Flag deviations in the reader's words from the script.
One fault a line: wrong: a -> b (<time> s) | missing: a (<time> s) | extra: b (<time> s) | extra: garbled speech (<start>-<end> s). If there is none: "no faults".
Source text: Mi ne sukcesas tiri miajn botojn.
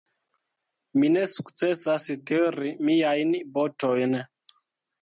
no faults